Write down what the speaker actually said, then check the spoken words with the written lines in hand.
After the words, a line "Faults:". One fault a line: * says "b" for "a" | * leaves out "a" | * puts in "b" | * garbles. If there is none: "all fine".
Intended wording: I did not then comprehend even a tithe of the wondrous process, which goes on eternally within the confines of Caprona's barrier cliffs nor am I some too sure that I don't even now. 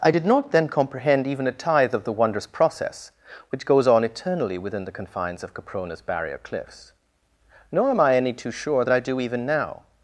I did not then comprehend even a tithe of the wondrous process, which goes on eternally within the confines of Caprona's barrier cliffs nor am I any too sure that I do even now.
Faults:
* says "any" for "some"
* says "do" for "don't"